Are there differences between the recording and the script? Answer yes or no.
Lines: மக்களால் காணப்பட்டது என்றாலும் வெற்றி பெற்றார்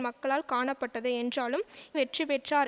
no